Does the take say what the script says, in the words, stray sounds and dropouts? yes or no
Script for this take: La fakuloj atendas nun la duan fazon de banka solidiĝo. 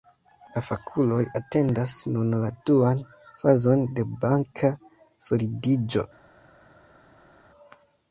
yes